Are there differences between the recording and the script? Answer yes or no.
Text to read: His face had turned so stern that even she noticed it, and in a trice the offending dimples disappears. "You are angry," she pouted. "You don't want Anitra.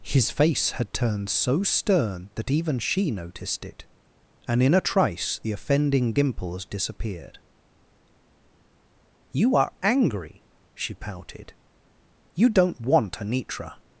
yes